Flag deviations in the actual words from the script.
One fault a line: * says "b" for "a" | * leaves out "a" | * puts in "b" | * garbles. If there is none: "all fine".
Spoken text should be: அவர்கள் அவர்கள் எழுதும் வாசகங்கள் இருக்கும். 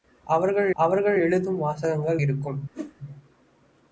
all fine